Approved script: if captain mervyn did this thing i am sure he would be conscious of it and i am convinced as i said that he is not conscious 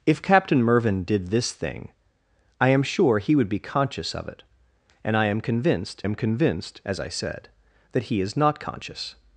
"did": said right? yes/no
yes